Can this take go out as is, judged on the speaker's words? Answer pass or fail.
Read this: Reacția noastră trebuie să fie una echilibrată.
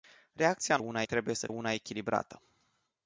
fail